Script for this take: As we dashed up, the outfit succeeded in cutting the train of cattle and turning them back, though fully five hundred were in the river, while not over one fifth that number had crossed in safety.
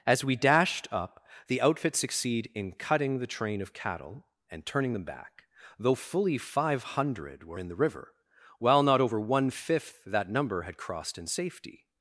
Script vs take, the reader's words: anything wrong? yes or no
yes